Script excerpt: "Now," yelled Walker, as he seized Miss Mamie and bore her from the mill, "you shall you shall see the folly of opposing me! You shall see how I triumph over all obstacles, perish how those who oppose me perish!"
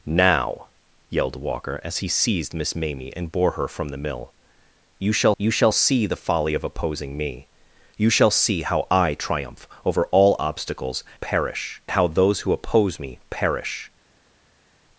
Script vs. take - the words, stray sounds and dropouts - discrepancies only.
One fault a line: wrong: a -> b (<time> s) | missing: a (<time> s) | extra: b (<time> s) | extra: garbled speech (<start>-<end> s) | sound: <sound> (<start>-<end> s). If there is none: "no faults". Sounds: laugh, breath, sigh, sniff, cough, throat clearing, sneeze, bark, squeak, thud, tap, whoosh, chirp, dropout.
no faults